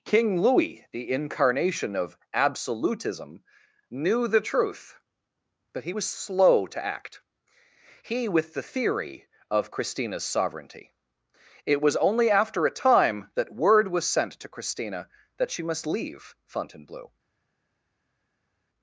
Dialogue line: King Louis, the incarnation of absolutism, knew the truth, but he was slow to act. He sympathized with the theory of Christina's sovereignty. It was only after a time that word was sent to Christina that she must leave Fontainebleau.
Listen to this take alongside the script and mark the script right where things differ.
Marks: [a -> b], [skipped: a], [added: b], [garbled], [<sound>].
King Louis, the incarnation of absolutism, knew the truth, but he was slow to act. He [skipped: sympathized] with the theory of Christina's sovereignty. It was only after a time that word was sent to Christina that she must leave Fontainebleau.